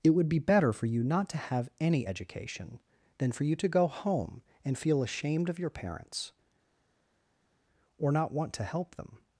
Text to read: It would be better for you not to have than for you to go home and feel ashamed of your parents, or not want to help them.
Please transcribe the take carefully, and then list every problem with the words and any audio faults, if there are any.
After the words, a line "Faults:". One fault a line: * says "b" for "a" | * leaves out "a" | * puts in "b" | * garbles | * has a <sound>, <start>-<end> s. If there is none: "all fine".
It would be better for you not to have any education, than for you to go home and feel ashamed of your parents, or not want to help them.
Faults:
* puts in "any education"